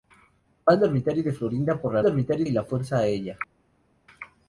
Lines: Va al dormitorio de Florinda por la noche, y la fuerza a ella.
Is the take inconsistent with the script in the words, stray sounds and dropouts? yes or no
yes